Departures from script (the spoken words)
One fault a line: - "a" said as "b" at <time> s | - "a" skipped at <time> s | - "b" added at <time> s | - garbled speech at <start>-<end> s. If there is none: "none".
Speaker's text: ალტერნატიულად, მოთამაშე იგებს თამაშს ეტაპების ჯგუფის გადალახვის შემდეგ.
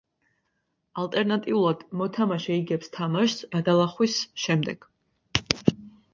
- "ეტაპების ჯგუფის" skipped at 3.5 s